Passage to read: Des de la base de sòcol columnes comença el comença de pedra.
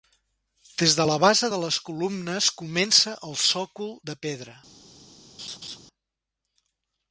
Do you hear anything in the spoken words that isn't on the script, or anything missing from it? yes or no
yes